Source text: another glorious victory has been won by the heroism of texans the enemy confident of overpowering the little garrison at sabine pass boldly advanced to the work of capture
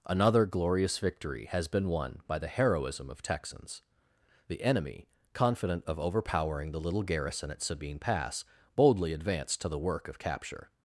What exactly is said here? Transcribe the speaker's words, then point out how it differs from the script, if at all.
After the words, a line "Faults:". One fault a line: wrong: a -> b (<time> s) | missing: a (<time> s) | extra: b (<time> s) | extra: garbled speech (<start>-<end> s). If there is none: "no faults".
another glorious victory has been won by the heroism of texans the enemy confident of overpowering the little garrison at sabine pass boldly advanced to the work of capture
Faults:
no faults